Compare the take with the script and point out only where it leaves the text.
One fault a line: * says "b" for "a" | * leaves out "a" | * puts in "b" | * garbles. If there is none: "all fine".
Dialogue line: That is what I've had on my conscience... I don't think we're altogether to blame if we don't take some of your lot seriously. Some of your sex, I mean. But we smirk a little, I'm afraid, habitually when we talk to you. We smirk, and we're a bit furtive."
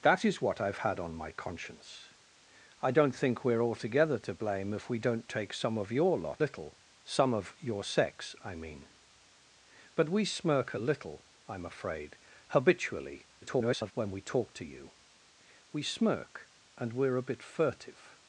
* says "little" for "seriously"
* garbles